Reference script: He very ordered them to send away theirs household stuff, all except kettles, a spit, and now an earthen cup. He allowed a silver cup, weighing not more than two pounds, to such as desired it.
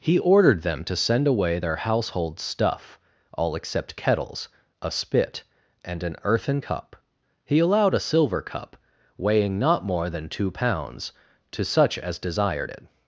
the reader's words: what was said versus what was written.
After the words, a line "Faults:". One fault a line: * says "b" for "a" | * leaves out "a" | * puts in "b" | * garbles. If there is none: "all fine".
He ordered them to send away their household stuff, all except kettles, a spit, and an earthen cup. He allowed a silver cup, weighing not more than two pounds, to such as desired it.
Faults:
* leaves out "very"
* says "their" for "theirs"
* leaves out "now"